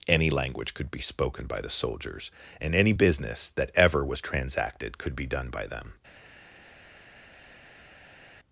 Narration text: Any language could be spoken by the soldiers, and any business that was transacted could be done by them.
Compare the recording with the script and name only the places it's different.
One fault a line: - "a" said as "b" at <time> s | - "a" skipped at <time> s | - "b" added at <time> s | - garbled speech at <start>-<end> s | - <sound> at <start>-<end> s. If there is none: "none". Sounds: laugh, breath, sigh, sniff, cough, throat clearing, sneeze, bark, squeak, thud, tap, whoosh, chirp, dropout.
- "ever" added at 3.8 s